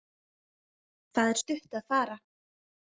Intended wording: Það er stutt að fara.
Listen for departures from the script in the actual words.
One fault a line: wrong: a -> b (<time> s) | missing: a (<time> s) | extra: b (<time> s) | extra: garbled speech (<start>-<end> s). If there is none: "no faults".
no faults